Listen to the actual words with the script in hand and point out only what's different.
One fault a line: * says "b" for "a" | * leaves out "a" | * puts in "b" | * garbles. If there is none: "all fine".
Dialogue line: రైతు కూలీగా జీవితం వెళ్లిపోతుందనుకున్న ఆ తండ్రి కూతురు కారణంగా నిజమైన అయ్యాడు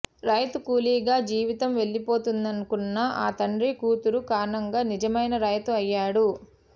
* puts in "రైతు"